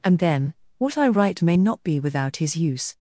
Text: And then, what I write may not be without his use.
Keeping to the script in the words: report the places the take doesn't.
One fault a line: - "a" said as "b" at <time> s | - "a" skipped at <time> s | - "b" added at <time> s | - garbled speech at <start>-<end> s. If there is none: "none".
none